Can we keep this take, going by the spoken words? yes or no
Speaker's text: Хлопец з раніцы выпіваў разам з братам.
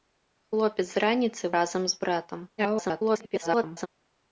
no